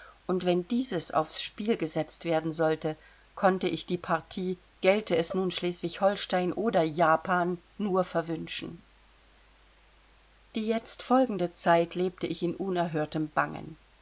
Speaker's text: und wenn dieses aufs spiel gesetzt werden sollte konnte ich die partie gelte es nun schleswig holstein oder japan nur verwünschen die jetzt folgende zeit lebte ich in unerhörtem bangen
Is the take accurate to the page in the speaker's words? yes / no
yes